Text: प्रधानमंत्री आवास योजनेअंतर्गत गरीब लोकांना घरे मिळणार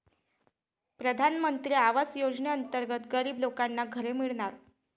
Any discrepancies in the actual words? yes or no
no